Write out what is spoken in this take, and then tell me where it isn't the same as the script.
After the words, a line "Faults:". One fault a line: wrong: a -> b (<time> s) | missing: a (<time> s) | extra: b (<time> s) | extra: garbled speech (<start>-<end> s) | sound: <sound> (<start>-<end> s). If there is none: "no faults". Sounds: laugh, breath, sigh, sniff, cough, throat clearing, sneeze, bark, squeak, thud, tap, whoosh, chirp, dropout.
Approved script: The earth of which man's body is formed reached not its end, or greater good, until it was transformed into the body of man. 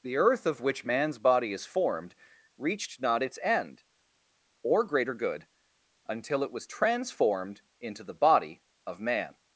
The earth of which man's body is formed reached not its end, or greater good, until it was transformed into the body of man.
Faults:
no faults